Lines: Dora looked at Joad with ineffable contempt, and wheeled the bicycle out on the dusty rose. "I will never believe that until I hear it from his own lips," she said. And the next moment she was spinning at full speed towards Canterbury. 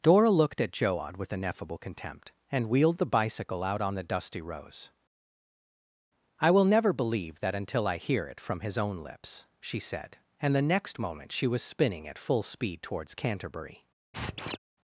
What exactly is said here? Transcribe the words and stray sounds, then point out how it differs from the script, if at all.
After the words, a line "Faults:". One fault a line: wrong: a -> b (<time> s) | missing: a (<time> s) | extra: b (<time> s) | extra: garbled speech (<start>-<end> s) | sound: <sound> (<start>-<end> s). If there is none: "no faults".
Dora looked at Joad with ineffable contempt, and wheeled the bicycle out on the dusty rose. "I will never believe that until I hear it from his own lips," she said. And the next moment she was spinning at full speed towards Canterbury.
Faults:
sound: squeak (14.1-14.6 s)